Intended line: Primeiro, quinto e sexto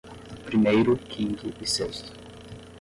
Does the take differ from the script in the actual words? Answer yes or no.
no